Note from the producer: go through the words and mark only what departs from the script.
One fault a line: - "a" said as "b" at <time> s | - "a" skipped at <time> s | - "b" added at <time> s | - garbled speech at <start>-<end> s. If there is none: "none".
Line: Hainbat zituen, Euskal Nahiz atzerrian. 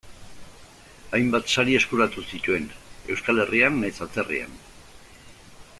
- "sari eskuratu" added at 1.5 s
- "Herrian" added at 3.5 s